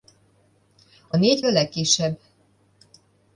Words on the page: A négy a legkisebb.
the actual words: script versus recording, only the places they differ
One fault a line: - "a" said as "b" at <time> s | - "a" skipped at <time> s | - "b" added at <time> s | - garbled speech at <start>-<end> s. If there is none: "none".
none